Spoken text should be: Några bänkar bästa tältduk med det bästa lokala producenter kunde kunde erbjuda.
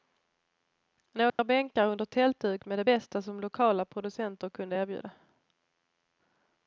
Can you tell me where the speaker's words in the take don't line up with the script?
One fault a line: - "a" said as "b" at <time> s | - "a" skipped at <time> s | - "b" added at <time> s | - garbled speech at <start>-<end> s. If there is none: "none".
- "bästa" said as "under" at 1.9 s
- "som" added at 3.2 s
- "kunde" skipped at 4.8 s